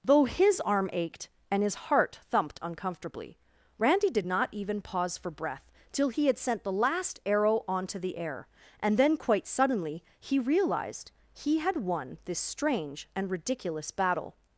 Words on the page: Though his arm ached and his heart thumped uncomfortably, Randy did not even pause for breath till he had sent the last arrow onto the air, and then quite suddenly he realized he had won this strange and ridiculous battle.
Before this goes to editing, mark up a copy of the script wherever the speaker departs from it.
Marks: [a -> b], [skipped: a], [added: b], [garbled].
Though his arm ached and his heart thumped uncomfortably, Randy did not even pause for breath till he had sent the last arrow onto the air, and then quite suddenly he realized he had won this strange and ridiculous battle.